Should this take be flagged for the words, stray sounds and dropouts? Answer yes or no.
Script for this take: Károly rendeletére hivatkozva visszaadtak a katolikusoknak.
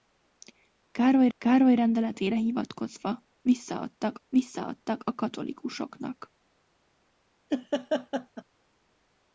yes